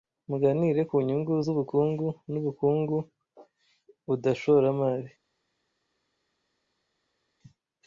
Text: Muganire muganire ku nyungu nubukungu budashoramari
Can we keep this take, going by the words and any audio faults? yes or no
no